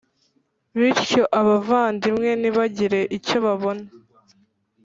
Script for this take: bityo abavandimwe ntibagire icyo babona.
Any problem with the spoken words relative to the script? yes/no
no